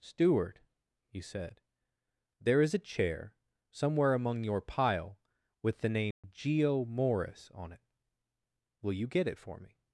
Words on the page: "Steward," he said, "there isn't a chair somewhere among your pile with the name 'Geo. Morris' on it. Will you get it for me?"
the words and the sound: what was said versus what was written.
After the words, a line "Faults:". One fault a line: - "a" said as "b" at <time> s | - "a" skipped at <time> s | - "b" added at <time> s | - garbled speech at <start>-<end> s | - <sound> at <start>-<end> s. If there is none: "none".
"Steward," he said, "there is a chair somewhere among your pile with the name 'Geo. Morris' on it. Will you get it for me?"
Faults:
- "isn't" said as "is" at 2.6 s
- dropout at 6.1-6.2 s